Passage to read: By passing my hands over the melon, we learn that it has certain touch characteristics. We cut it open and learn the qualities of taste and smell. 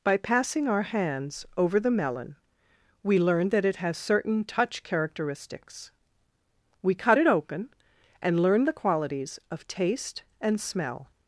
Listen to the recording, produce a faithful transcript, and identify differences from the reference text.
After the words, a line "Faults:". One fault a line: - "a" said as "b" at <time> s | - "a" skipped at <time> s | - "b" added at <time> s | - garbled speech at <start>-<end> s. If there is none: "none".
By passing our hands over the melon, we learn that it has certain touch characteristics. We cut it open and learn the qualities of taste and smell.
Faults:
- "my" said as "our" at 0.7 s